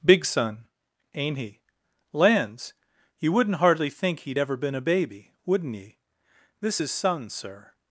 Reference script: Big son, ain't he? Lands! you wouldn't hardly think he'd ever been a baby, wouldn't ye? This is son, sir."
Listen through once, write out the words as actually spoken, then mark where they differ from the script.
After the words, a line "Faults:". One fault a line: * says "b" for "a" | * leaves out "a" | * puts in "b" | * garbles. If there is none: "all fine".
Big son, ain't he? Lands! you wouldn't hardly think he'd ever been a baby, wouldn't ye? This is son, sir."
Faults:
all fine